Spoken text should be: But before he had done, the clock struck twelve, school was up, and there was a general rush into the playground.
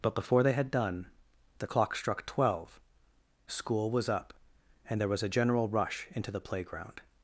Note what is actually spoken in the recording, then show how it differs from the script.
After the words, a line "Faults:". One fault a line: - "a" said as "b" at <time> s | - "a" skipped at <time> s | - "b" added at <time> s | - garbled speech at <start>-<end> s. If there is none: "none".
But before they had done, the clock struck twelve, school was up, and there was a general rush into the playground.
Faults:
- "he" said as "they" at 0.4 s